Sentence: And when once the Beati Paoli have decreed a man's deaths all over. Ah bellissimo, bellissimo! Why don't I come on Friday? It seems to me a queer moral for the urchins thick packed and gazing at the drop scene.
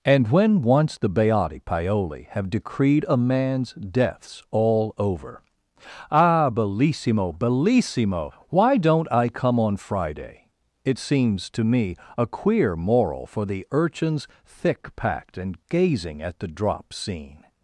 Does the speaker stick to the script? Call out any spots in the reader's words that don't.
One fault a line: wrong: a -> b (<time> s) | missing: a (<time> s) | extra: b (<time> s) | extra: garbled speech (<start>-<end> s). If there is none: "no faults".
no faults